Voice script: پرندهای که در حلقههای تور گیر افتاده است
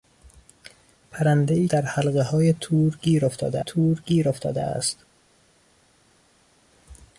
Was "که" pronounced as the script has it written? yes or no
no